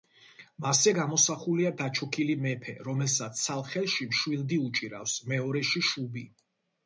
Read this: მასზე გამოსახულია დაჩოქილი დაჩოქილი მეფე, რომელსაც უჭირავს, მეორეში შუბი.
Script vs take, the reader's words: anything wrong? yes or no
yes